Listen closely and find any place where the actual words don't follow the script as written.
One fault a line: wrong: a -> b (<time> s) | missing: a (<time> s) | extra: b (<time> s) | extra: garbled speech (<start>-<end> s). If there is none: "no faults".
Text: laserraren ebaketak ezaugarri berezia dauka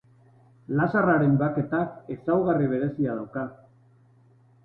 no faults